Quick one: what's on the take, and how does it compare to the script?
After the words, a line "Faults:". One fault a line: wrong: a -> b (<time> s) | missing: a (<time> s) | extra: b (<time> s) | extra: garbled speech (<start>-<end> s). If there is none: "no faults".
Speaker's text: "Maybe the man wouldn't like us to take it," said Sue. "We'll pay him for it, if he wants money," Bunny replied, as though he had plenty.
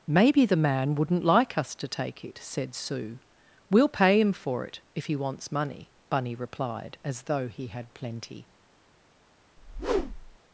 "Maybe the man wouldn't like us to take it," said Sue. "We'll pay him for it, if he wants money," Bunny replied, as though he had plenty.
Faults:
no faults